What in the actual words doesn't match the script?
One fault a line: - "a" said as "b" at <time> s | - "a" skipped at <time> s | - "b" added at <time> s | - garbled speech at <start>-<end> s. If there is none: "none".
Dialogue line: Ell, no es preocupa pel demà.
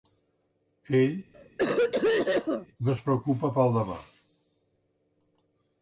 none